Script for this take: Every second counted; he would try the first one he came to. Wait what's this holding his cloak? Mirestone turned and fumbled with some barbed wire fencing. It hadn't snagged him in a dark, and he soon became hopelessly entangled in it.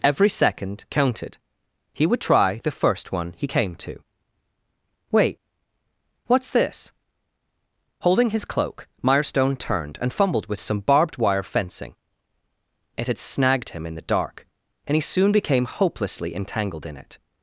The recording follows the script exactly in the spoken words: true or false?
false